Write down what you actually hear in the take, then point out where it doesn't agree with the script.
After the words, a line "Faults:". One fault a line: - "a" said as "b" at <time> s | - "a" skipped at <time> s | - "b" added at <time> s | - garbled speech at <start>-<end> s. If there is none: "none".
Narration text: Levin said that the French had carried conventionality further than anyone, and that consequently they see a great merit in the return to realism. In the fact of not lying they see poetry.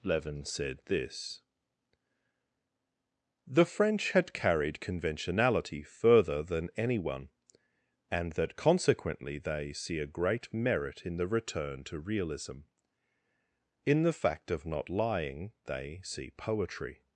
Levin said this the French had carried conventionality further than anyone, and that consequently they see a great merit in the return to realism. In the fact of not lying they see poetry.
Faults:
- "that" said as "this" at 0.8 s